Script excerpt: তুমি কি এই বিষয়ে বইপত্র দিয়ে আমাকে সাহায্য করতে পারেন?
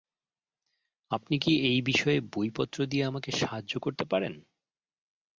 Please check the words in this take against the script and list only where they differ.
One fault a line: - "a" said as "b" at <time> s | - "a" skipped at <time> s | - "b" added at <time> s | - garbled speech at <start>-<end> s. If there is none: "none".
- "তুমি" said as "আপনি" at 1.1 s